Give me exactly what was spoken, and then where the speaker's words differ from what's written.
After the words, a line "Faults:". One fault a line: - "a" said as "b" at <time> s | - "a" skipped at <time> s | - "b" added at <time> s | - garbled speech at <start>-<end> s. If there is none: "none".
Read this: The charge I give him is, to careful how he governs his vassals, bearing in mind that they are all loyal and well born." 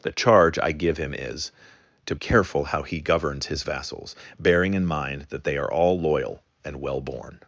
The charge I give him is, to careful how he governs his vassals, bearing in mind that they are all loyal and well born."
Faults:
none